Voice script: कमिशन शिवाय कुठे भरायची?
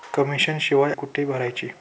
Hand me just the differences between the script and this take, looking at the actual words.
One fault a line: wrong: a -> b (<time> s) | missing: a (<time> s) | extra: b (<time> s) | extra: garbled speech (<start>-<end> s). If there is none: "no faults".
no faults